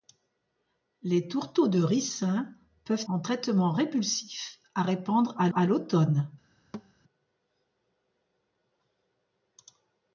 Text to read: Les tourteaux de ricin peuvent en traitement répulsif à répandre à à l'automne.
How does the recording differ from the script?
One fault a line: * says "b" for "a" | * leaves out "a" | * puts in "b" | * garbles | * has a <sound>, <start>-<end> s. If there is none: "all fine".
* has a thud, 6.7-6.9 s